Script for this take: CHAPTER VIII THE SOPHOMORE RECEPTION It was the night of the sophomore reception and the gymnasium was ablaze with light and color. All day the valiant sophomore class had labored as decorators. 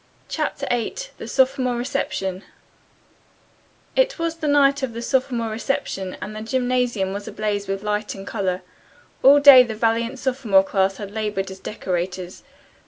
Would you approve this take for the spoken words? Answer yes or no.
yes